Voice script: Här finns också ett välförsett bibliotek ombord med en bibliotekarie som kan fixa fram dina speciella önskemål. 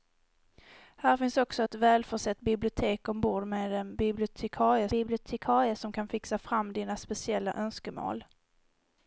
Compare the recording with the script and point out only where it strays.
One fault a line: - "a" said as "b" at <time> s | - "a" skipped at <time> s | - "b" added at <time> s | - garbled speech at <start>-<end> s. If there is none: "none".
- "bibliotekarie" added at 4.9 s